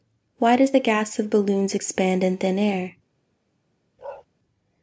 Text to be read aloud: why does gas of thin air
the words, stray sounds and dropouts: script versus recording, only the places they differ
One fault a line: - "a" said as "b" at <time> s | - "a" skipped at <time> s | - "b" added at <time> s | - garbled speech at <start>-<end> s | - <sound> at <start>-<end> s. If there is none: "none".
- "the" added at 0.7 s
- "balloons expand in" added at 1.3 s
- bark at 4.0-4.3 s